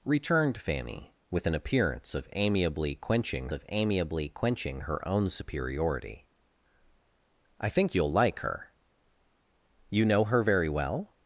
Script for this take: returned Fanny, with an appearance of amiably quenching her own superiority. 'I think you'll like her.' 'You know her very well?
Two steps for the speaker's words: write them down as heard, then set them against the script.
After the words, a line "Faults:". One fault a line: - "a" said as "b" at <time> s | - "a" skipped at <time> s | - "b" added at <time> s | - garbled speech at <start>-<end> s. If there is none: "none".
returned Fanny, with an appearance of amiably quenching of amiably quenching her own superiority. 'I think you'll like her.' 'You know her very well?
Faults:
- "of amiably quenching" added at 3.5 s